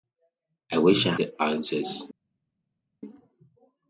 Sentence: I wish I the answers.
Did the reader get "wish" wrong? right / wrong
right